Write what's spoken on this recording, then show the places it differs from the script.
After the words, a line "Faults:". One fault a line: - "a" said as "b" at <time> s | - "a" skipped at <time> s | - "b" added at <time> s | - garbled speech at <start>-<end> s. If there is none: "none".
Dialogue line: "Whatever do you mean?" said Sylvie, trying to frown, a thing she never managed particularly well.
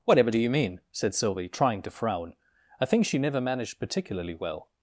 "Whatever do you mean?" said Sylvie, trying to frown, a thing she never managed particularly well.
Faults:
none